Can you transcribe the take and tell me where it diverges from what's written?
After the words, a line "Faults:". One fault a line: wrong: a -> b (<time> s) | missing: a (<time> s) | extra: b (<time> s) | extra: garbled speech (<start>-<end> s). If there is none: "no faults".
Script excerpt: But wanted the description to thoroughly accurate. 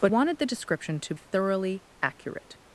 But wanted the description to thoroughly accurate.
Faults:
no faults